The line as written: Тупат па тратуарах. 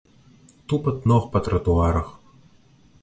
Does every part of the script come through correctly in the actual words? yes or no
no